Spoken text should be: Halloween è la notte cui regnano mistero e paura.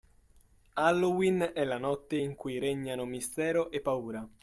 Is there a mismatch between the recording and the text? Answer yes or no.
yes